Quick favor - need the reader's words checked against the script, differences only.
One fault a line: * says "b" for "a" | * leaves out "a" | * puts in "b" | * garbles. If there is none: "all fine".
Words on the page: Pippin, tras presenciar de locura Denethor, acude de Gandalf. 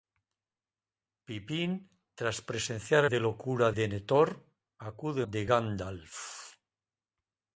all fine